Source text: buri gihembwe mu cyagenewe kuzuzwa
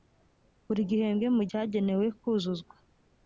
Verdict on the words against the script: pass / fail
pass